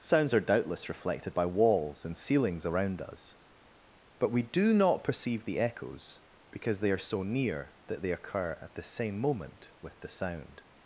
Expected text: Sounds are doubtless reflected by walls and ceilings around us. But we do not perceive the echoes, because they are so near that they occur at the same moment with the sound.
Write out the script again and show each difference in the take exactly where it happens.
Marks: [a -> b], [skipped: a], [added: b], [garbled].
Sounds are doubtless reflected by walls and ceilings around us. But we do not perceive the echoes, because they are so near that they occur at the same moment with the sound.